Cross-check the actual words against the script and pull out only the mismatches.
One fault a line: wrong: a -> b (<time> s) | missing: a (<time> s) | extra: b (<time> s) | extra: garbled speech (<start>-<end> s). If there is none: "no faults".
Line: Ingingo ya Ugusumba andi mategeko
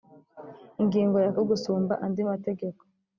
no faults